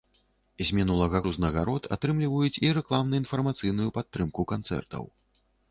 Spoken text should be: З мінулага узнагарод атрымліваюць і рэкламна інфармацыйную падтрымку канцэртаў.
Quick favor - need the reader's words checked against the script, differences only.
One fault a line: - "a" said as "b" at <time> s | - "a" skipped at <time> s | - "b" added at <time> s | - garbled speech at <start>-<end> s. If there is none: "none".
none